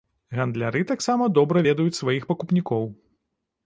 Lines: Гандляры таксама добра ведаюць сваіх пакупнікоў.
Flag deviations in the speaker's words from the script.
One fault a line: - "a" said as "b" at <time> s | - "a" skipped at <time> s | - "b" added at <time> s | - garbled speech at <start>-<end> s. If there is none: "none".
none